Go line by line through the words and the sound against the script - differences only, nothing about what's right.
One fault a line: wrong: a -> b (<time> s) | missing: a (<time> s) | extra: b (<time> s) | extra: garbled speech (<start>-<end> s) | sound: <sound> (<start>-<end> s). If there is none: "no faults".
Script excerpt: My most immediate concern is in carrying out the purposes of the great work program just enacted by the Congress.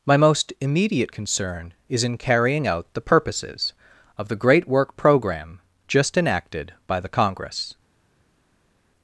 no faults